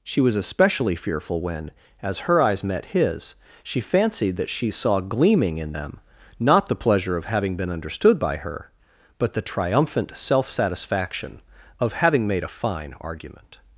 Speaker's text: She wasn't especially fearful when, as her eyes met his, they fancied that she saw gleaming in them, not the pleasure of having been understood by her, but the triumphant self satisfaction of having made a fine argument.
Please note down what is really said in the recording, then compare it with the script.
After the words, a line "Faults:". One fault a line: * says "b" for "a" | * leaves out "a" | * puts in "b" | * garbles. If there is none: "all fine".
She was especially fearful when, as her eyes met his, she fancied that she saw gleaming in them, not the pleasure of having been understood by her, but the triumphant self satisfaction of having made a fine argument.
Faults:
* says "was" for "wasn't"
* says "she" for "they"